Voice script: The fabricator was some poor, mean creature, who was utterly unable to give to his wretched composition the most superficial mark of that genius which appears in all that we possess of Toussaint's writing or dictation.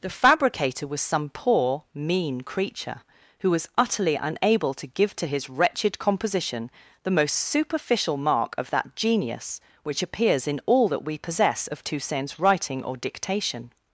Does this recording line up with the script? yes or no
yes